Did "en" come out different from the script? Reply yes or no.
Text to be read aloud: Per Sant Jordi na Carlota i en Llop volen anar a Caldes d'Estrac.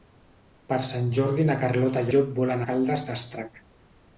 yes